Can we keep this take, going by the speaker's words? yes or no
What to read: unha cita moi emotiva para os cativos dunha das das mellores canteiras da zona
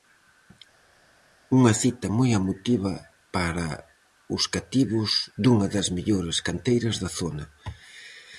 no